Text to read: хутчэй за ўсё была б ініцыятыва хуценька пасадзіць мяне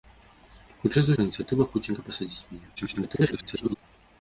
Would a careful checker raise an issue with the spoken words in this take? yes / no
yes